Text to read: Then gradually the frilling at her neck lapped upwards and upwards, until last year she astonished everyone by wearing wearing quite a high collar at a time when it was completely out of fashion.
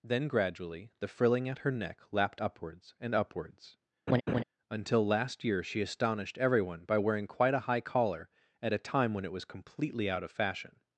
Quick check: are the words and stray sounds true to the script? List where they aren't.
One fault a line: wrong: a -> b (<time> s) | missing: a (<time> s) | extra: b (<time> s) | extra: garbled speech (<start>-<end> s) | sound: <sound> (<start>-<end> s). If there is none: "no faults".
sound: laugh (4.1-4.4 s)
missing: wearing (7.3 s)